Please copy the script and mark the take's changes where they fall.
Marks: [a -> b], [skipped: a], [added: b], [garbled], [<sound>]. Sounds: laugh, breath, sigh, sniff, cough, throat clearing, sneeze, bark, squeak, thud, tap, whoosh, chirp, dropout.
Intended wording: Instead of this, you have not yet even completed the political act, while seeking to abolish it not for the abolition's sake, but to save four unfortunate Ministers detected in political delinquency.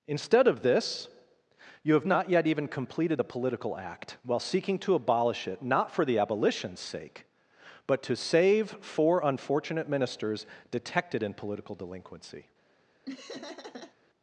Instead of this, you have not yet even completed the political act, while seeking to abolish it not for the abolition's sake, but to save four unfortunate Ministers detected in political delinquency. [laugh]